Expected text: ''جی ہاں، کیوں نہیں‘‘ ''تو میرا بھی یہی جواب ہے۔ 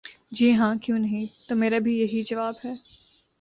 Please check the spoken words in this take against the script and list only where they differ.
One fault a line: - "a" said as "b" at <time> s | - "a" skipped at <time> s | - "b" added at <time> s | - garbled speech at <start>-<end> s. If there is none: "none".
none